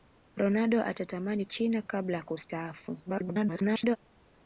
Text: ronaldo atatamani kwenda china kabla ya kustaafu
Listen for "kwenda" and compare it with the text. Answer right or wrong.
wrong